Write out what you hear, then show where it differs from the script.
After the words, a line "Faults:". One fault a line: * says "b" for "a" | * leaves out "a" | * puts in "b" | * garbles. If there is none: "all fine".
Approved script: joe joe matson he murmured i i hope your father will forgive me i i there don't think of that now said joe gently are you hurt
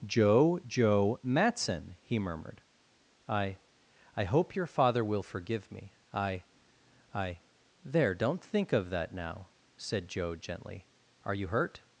joe joe matson he murmured i i hope your father will forgive me i i there don't think of that now said joe gently are you hurt
Faults:
all fine